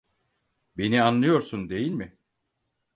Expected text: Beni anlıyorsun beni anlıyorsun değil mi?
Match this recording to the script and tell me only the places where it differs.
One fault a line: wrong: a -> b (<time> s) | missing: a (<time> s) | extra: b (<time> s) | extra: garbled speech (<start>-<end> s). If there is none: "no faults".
missing: beni anlıyorsun (1.7 s)